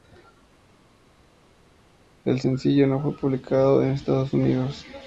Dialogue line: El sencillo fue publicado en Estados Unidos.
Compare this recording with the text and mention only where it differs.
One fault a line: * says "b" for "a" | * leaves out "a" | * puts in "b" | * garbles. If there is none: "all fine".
* puts in "no"